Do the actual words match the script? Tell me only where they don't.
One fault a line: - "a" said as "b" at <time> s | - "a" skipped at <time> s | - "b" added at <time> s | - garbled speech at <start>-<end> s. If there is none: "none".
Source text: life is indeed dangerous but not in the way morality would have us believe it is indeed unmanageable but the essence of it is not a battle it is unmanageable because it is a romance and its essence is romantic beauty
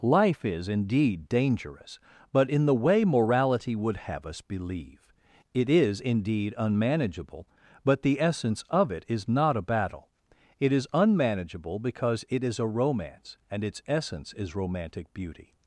- "not" skipped at 2.5 s